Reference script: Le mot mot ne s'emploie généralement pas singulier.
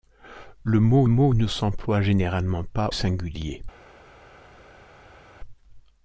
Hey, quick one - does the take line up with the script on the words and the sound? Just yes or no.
yes